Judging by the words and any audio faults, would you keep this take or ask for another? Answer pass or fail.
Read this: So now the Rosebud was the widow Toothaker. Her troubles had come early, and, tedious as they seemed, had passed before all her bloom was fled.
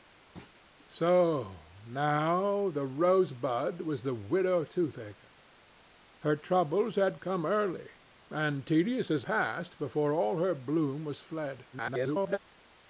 fail